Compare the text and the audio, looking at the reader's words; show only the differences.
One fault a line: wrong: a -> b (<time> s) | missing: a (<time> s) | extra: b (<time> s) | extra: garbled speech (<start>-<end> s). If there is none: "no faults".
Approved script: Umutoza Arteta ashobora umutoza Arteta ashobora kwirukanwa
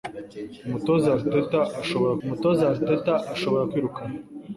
no faults